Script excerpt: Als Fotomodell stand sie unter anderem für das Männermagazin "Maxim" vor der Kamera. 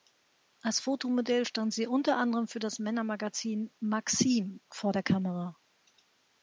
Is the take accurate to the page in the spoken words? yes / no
yes